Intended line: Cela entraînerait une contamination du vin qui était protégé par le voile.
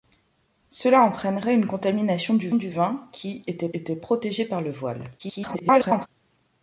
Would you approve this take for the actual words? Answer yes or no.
no